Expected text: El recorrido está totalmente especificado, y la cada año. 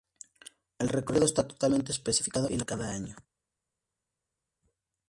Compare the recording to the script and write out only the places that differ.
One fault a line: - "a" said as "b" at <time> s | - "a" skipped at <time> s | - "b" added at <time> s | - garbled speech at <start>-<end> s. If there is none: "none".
none